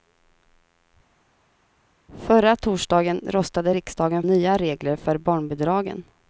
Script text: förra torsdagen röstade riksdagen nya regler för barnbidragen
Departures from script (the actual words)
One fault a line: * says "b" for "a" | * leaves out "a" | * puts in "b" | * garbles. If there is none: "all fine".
all fine